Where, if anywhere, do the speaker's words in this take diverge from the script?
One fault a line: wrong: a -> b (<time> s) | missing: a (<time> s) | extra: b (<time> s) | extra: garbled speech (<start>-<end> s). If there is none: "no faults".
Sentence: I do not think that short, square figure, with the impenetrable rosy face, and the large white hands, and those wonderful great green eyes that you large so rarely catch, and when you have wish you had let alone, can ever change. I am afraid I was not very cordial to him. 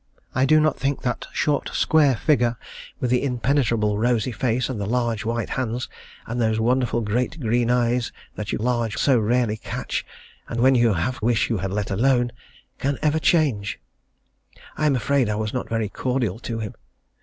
no faults